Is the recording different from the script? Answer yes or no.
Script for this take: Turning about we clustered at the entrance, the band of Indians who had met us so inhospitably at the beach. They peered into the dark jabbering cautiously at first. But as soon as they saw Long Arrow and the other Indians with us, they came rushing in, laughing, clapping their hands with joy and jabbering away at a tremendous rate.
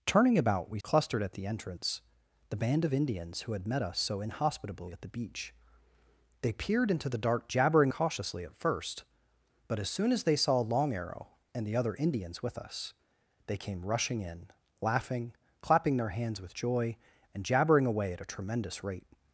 no